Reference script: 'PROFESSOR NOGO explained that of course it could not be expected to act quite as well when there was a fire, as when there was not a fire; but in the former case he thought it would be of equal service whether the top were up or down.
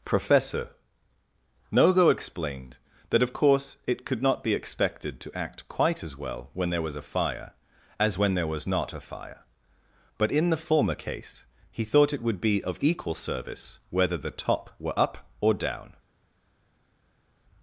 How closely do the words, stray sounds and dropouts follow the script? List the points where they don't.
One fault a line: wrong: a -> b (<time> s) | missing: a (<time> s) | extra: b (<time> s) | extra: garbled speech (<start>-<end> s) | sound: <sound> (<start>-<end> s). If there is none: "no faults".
no faults